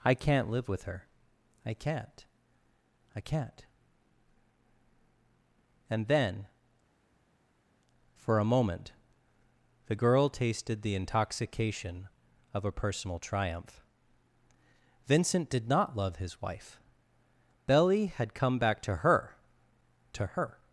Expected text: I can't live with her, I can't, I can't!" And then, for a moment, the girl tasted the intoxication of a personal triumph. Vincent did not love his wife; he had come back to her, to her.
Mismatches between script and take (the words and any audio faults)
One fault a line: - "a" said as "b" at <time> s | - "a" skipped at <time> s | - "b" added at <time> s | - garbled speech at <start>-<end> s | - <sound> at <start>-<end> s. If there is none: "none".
- "he" said as "belly" at 17.7 s